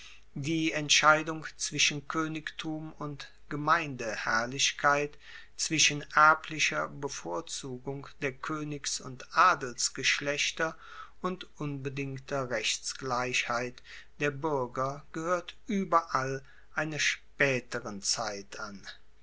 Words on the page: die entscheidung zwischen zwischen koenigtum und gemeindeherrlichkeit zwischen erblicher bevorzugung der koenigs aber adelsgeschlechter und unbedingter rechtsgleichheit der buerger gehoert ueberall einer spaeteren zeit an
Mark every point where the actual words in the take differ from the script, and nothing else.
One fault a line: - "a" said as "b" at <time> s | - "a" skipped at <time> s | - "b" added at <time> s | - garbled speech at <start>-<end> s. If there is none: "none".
- "zwischen" skipped at 2.1 s
- "aber" said as "und" at 9.0 s